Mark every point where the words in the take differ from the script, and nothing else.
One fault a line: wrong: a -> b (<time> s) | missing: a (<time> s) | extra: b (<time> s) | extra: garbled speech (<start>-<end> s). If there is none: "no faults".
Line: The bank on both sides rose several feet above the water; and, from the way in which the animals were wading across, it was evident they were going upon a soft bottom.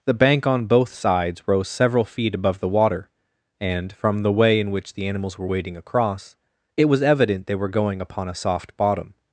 no faults